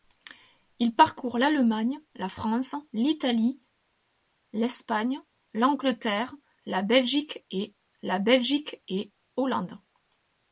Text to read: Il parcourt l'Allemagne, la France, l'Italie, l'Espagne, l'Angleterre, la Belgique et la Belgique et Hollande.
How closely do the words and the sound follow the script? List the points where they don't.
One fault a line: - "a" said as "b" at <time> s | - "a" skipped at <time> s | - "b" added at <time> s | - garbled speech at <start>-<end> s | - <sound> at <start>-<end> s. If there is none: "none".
none